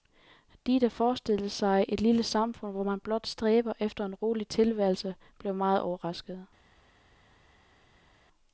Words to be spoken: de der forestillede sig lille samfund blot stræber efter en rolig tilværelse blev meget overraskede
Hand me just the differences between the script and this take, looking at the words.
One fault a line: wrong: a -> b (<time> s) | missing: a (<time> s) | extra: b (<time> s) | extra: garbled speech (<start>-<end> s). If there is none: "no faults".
extra: et (1.9 s)
extra: hvor man (2.7 s)